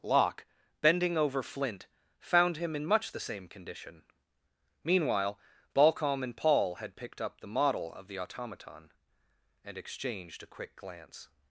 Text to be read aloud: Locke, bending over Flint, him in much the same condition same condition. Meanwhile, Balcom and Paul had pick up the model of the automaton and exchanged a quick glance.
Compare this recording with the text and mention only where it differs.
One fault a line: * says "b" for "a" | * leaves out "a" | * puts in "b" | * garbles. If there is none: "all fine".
* puts in "found"
* leaves out "same condition"
* says "picked" for "pick"